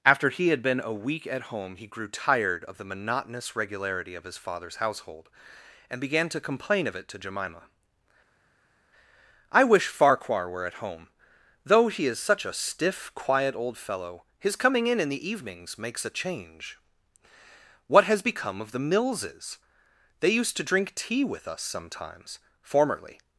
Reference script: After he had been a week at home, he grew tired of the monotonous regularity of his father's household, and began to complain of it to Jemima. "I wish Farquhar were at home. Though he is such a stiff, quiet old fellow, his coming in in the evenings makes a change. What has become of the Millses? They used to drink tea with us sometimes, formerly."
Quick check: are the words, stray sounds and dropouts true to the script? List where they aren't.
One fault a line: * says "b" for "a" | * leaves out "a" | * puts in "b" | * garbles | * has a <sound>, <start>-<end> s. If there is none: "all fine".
all fine